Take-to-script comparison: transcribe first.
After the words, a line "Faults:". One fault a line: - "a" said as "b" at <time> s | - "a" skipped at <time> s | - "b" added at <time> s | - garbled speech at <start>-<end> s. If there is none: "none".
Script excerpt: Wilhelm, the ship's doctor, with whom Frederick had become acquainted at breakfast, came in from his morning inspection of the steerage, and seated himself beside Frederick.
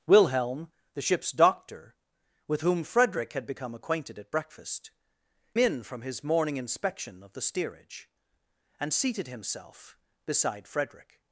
Wilhelm, the ship's doctor, with whom Frederick had become acquainted at breakfast, in from his morning inspection of the steerage, and seated himself beside Frederick.
Faults:
- "came" skipped at 4.9 s